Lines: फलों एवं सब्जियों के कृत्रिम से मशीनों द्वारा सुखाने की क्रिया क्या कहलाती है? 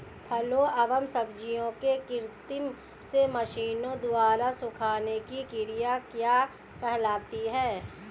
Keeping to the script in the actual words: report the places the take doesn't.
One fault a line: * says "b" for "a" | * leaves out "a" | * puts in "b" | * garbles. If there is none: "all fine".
all fine